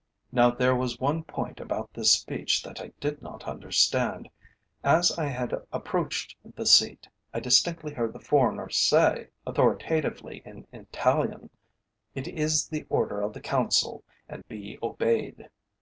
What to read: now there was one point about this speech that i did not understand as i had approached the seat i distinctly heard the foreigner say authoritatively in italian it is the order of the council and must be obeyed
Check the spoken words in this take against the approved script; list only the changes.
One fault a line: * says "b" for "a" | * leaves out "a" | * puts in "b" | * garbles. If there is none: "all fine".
* leaves out "must"